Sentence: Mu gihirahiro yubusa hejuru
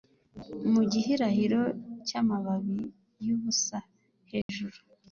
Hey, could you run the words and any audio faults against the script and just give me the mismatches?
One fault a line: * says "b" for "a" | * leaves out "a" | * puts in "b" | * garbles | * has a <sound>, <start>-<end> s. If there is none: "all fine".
* puts in "cyamababi"
* has a dropout, 4.4-4.5 s